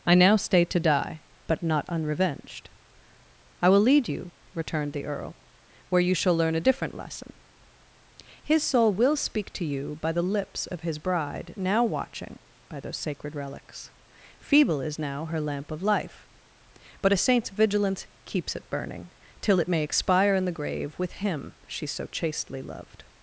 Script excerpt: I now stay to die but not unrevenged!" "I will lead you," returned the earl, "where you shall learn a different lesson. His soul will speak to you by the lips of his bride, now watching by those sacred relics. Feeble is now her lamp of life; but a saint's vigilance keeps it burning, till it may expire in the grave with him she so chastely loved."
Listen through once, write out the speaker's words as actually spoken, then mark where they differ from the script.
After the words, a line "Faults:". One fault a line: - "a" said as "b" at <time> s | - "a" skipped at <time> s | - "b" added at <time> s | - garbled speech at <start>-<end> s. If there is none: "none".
I now stay to die but not unrevenged!" "I will lead you," returned the earl, "where you shall learn a different lesson. His soul will speak to you by the lips of his bride, now watching by those sacred relics. Feeble is now her lamp of life; but a saint's vigilance keeps it burning, till it may expire in the grave with him she so chastely loved."
Faults:
none